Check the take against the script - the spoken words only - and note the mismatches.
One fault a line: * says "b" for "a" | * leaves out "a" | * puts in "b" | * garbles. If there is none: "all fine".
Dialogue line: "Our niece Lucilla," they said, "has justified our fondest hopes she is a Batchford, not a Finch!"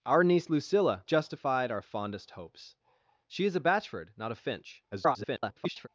* leaves out "they said has"
* garbles